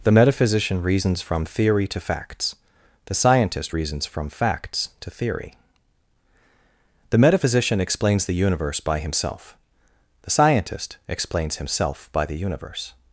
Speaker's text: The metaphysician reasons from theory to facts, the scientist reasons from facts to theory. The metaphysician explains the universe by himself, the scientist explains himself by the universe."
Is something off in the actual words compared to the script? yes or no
no